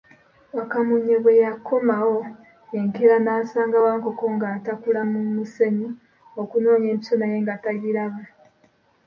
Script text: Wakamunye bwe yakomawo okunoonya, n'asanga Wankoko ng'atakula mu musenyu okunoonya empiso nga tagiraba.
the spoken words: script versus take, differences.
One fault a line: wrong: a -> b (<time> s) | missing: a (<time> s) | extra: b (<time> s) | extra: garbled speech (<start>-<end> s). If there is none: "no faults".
wrong: okunoonya -> enkeera (2.8 s)
extra: naye (7.2 s)